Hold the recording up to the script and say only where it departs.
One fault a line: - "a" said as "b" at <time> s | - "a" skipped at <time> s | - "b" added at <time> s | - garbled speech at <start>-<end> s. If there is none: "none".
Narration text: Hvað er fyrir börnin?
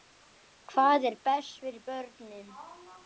- "best" added at 1.3 s